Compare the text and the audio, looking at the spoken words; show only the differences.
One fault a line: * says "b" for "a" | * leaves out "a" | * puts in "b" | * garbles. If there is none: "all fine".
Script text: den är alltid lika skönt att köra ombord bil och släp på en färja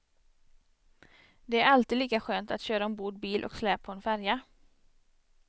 * says "det" for "den"